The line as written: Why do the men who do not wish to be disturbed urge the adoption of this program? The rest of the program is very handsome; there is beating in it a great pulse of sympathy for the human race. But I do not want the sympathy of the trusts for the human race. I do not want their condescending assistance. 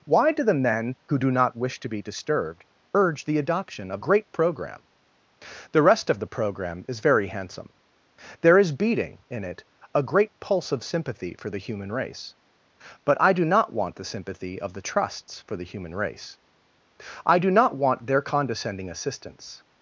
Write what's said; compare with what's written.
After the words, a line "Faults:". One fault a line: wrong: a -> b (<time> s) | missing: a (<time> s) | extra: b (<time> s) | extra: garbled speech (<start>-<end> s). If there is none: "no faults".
Why do the men who do not wish to be disturbed urge the adoption of great program? The rest of the program is very handsome; there is beating in it a great pulse of sympathy for the human race. But I do not want the sympathy of the trusts for the human race. I do not want their condescending assistance.
Faults:
wrong: this -> great (4.0 s)